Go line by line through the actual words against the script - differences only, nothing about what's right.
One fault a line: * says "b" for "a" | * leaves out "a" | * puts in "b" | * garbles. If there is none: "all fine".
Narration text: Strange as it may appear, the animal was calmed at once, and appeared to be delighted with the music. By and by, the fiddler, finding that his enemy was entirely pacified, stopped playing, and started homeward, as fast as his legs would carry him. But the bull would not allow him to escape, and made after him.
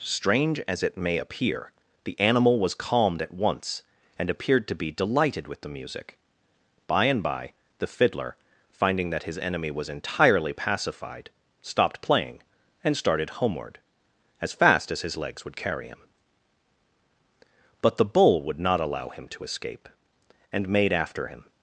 all fine